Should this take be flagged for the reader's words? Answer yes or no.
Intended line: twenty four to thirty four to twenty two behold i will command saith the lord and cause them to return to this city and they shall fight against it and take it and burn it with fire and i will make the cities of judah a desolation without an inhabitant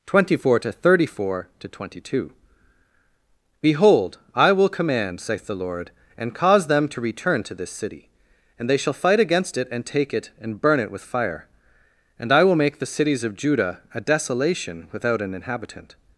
no